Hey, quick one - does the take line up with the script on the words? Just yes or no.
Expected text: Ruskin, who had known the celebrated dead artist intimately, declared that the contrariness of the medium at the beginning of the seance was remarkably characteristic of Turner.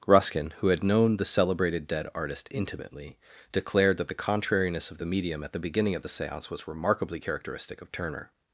yes